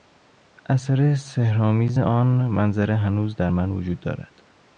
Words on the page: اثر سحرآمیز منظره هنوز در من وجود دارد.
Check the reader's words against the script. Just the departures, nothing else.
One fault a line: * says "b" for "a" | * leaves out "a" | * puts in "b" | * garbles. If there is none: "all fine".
* puts in "آن"